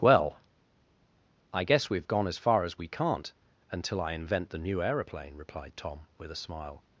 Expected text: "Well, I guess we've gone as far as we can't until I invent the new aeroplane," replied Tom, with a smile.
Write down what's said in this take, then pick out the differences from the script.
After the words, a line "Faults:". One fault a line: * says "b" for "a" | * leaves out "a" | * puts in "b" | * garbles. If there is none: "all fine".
"Well, I guess we've gone as far as we can't until I invent the new aeroplane," replied Tom, with a smile.
Faults:
all fine